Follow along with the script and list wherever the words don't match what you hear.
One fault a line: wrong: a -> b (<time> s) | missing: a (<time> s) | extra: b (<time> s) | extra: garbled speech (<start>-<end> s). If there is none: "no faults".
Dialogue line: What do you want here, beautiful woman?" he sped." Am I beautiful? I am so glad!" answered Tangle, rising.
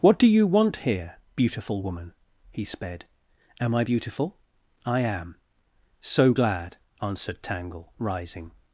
no faults